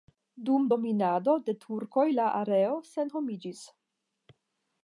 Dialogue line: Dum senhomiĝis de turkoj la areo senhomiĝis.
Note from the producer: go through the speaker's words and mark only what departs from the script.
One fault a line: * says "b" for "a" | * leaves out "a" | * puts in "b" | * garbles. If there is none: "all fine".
* says "dominado" for "senhomiĝis"